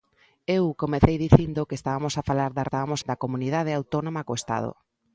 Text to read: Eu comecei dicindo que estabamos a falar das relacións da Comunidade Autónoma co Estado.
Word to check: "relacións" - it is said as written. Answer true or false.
false